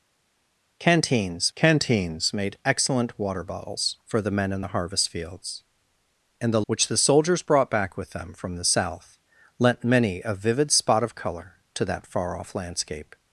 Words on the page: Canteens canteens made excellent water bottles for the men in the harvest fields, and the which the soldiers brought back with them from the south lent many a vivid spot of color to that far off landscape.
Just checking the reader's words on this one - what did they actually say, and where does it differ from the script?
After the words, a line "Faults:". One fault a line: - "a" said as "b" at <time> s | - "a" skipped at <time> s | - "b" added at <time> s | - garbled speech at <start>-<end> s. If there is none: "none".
Canteens canteens made excellent water bottles for the men in the harvest fields, and the which the soldiers brought back with them from the south lent many a vivid spot of color to that far off landscape.
Faults:
none